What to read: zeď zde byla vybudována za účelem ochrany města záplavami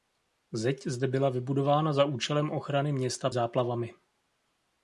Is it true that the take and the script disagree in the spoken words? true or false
false